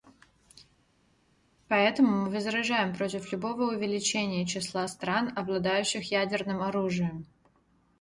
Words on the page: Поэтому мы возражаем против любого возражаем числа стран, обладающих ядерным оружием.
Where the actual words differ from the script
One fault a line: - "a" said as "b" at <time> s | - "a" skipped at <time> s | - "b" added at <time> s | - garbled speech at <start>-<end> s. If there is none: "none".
- "возражаем" said as "увеличения" at 3.7 s